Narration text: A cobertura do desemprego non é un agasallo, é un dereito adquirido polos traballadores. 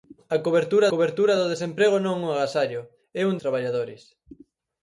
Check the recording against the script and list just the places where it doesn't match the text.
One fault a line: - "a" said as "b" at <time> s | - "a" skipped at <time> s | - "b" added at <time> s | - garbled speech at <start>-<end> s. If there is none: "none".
- "cobertura" added at 0.9 s
- "dereito adquirido polos" skipped at 3.3 s